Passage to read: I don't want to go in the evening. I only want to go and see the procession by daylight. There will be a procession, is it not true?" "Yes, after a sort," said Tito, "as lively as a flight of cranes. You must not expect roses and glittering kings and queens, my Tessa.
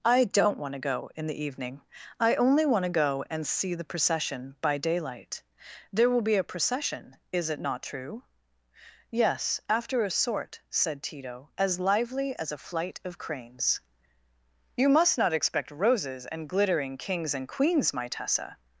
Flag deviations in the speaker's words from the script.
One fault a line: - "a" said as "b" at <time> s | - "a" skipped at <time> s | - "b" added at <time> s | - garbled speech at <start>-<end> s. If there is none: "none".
none